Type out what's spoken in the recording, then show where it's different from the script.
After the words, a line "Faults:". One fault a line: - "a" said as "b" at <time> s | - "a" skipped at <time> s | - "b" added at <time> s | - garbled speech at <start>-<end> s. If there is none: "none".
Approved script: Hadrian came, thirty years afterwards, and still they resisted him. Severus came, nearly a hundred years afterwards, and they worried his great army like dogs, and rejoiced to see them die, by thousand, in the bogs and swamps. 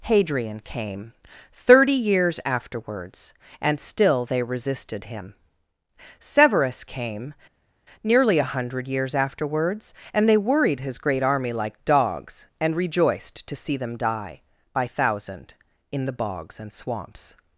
Hadrian came, thirty years afterwards, and still they resisted him. Severus came, nearly a hundred years afterwards, and they worried his great army like dogs, and rejoiced to see them die, by thousand, in the bogs and swamps.
Faults:
none